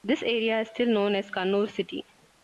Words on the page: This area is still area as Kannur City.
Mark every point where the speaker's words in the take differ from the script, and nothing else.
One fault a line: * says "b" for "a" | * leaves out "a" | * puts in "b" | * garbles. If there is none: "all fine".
* says "known" for "area"